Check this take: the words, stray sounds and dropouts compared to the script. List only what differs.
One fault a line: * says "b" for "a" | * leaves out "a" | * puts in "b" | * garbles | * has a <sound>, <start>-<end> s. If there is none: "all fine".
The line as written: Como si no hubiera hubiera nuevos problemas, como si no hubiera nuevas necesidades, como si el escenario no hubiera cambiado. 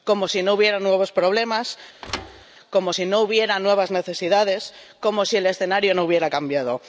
* leaves out "hubiera"
* has a thud, 2.0-2.5 s